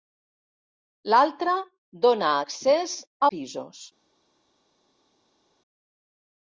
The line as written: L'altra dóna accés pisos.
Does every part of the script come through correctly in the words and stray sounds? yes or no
yes